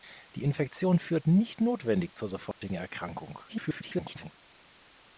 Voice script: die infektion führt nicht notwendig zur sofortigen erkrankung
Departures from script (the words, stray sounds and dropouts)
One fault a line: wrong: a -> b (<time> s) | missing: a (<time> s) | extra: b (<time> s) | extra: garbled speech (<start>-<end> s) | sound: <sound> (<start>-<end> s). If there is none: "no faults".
sound: dropout (2.5-2.6 s)
extra: garbled speech (3.5-4.3 s)